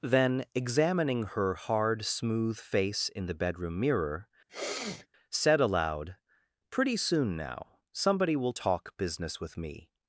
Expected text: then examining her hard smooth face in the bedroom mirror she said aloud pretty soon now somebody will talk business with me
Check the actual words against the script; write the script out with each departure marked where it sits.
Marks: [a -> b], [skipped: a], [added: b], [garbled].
then examining her hard smooth face in the bedroom mirror [skipped: she] said aloud pretty soon now somebody will talk business with me